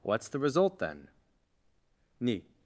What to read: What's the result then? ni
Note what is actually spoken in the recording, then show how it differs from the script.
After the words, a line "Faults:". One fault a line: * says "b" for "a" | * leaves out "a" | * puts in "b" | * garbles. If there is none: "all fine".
What's the result then? ni
Faults:
all fine